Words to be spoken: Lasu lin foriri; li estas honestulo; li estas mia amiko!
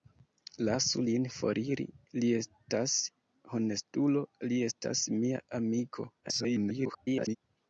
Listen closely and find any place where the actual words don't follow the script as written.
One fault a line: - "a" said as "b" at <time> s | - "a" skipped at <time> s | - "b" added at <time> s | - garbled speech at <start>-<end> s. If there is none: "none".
- garbled speech at 6.2-7.4 s